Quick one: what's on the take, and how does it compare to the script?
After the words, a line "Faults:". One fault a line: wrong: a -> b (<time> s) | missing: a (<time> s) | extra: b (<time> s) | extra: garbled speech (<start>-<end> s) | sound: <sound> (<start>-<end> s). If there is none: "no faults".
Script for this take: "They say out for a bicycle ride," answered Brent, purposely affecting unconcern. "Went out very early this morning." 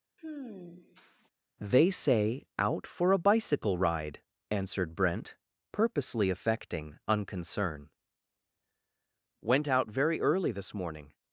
"They say out for a bicycle ride," answered Brent, purposely affecting unconcern. "Went out very early this morning."
Faults:
sound: sigh (0.2-1.3 s)